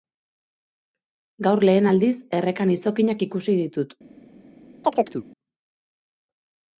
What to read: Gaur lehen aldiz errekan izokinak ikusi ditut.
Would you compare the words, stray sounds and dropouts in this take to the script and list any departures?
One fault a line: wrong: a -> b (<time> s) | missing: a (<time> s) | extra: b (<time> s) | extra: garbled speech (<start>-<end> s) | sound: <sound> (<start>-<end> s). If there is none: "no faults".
sound: chirp (4.8-5.3 s)